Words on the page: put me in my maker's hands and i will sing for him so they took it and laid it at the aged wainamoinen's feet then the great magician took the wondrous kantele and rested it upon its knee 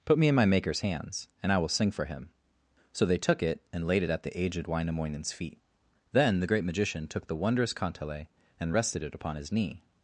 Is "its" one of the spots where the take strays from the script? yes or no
yes